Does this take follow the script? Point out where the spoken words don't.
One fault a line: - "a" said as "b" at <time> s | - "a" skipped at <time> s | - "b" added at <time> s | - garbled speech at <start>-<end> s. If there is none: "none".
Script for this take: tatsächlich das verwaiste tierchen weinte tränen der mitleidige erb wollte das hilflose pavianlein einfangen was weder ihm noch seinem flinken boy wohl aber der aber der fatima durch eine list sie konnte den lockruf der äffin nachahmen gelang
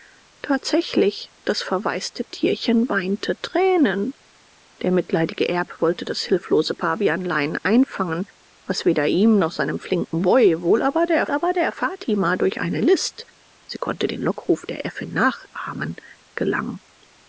none